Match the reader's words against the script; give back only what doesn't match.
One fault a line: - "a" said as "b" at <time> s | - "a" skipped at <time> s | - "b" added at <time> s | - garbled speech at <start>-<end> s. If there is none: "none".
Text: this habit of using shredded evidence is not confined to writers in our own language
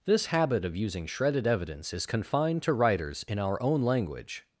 - "not" skipped at 2.1 s